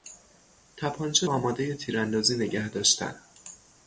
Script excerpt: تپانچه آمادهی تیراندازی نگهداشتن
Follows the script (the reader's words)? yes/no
yes